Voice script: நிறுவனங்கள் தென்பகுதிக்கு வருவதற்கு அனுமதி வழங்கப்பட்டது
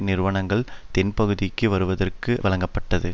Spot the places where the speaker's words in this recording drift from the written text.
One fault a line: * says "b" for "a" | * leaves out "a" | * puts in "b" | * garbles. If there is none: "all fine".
* leaves out "அனுமதி"